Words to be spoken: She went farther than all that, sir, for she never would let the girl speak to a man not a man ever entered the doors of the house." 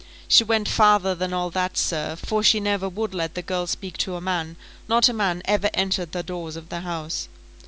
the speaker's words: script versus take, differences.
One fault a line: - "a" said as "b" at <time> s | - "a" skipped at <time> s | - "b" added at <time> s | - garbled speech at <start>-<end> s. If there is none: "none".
none